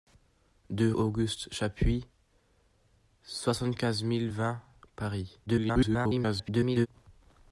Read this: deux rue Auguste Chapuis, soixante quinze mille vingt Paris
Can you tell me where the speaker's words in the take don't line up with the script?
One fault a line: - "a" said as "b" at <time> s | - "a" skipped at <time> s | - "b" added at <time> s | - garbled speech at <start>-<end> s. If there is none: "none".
- "rue" skipped at 0.9 s
- garbled speech at 5.5-6.9 s